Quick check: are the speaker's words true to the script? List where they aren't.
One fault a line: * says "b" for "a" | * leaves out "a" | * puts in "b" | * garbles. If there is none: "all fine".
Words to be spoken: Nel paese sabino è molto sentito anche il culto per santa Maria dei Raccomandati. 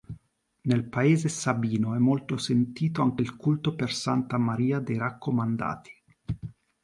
all fine